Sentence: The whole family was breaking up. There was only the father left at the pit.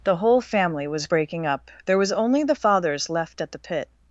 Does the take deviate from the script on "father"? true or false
true